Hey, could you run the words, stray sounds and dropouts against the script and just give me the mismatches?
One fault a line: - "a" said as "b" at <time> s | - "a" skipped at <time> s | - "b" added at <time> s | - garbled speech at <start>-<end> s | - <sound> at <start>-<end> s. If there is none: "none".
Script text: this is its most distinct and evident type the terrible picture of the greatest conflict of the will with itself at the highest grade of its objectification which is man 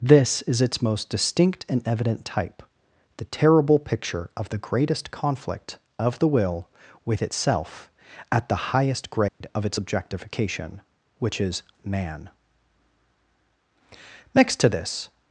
- dropout at 9.3-9.4 s
- "next to this" added at 14.3 s